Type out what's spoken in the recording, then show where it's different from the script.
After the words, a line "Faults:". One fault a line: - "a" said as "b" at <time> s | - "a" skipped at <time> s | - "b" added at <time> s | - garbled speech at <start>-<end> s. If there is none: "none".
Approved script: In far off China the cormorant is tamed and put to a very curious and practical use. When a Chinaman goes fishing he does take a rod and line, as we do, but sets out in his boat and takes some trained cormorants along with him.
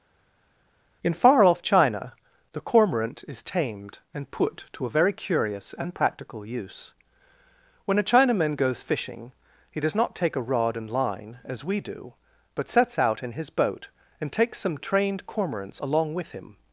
In far off China the cormorant is tamed and put to a very curious and practical use. When a Chinaman goes fishing he does not take a rod and line, as we do, but sets out in his boat and takes some trained cormorants along with him.
Faults:
- "not" added at 9.9 s